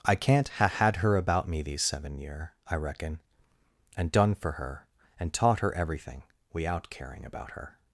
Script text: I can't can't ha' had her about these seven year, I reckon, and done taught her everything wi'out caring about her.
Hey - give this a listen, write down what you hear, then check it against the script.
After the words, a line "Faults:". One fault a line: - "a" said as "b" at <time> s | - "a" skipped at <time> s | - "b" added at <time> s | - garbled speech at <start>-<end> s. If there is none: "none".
I can't ha' had her about me these seven year, I reckon, and done for her, and taught her everything wi'out caring about her.
Faults:
- "can't" skipped at 0.5 s
- "me" added at 1.5 s
- "for her and" added at 4.3 s